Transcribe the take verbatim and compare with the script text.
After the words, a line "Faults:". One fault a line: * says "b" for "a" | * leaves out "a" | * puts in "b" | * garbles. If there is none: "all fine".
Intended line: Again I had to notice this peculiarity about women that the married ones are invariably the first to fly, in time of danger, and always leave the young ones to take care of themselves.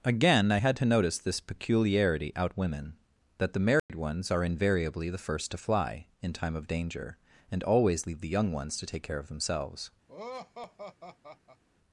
Again I had to notice this peculiarity out women that the married ones are invariably the first to fly, in time of danger, and always leave the young ones to take care of themselves.
Faults:
* says "out" for "about"